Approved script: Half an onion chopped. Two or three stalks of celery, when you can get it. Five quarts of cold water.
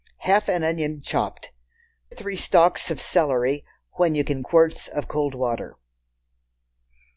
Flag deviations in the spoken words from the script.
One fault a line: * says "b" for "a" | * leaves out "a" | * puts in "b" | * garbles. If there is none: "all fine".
* leaves out "Two or"
* leaves out "get it Five"